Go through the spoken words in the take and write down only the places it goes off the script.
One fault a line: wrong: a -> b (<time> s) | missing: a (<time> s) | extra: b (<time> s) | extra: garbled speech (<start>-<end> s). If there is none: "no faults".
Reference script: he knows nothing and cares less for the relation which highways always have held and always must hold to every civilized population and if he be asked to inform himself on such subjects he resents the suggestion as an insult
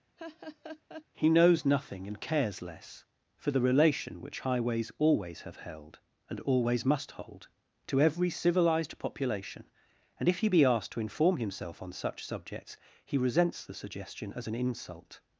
no faults